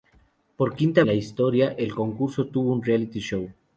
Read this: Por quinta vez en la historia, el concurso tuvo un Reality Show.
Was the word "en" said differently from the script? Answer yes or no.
yes